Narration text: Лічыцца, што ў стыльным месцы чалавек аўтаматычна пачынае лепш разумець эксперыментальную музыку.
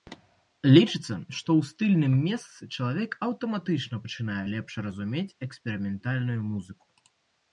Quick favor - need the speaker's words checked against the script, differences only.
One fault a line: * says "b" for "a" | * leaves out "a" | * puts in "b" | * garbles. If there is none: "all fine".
all fine